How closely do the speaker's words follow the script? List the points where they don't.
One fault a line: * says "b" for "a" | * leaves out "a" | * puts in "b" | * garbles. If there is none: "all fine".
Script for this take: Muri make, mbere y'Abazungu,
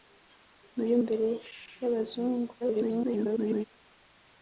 * leaves out "make"
* garbles